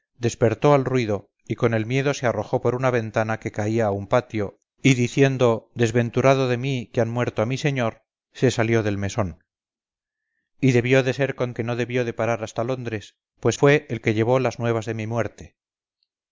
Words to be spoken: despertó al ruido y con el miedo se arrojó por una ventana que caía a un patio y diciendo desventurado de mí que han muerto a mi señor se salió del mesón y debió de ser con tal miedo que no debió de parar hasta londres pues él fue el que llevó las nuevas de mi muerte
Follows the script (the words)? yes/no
no